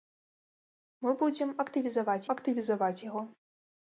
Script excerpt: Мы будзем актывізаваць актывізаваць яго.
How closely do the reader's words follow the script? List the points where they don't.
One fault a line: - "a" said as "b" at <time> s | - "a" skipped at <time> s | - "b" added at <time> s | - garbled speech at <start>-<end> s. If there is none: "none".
none